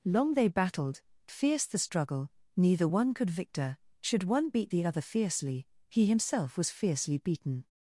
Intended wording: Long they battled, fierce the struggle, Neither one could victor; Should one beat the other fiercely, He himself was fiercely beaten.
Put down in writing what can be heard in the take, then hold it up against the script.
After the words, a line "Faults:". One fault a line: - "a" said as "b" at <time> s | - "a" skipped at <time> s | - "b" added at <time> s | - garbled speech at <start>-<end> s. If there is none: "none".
Long they battled, fierce the struggle, Neither one could victor; Should one beat the other fiercely, He himself was fiercely beaten.
Faults:
none